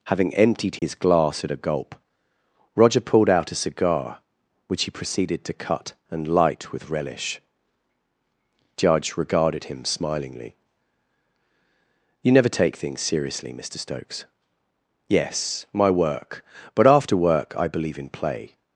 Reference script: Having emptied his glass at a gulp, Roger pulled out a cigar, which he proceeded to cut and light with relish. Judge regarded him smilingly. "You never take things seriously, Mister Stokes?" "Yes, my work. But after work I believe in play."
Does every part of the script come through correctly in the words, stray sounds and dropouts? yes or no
no